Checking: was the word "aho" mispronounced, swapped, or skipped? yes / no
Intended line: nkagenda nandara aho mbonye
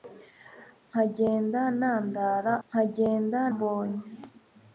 yes